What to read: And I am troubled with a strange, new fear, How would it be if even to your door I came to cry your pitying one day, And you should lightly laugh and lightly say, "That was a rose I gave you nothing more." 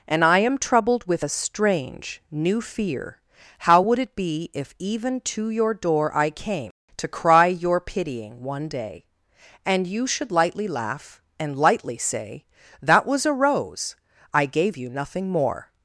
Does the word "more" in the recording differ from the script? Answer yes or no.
no